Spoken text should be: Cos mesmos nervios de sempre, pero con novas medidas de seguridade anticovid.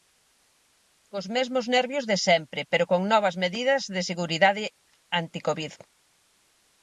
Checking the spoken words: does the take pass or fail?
pass